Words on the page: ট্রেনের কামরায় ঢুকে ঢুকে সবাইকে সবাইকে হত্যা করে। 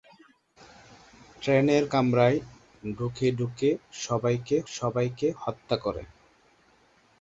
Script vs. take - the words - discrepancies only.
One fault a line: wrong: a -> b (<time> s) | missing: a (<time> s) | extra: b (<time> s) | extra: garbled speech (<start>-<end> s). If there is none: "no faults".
no faults